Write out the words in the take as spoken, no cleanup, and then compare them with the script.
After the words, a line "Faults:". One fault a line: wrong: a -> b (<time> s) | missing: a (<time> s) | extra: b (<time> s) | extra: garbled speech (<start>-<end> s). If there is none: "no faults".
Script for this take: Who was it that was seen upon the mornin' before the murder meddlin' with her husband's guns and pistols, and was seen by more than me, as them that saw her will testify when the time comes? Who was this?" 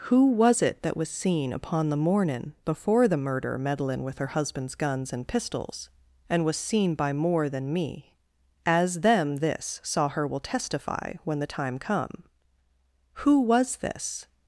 Who was it that was seen upon the mornin' before the murder meddlin' with her husband's guns and pistols, and was seen by more than me, as them this saw her will testify when the time come? Who was this?"
Faults:
wrong: that -> this (9.4 s)
wrong: comes -> come (11.8 s)